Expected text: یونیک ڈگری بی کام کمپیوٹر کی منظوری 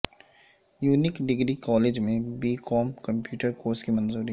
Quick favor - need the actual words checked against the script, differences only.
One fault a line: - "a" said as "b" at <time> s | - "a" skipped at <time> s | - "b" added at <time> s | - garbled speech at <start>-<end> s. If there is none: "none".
- "کالج میں" added at 1.6 s
- "کورس" added at 3.5 s